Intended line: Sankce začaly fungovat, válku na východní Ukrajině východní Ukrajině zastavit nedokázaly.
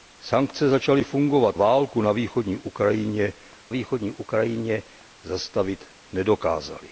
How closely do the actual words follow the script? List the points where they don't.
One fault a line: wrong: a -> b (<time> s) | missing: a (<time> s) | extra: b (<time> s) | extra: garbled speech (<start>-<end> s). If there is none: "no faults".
no faults